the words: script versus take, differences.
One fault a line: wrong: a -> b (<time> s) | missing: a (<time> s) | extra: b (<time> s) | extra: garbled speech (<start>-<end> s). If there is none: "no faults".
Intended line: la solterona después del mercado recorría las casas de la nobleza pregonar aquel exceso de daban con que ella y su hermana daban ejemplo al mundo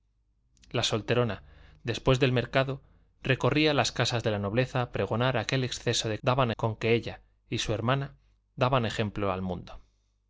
no faults